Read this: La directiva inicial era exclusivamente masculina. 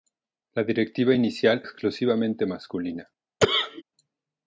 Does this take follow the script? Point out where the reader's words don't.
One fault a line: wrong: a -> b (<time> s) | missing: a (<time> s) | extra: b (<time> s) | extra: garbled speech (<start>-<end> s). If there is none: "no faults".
missing: era (1.6 s)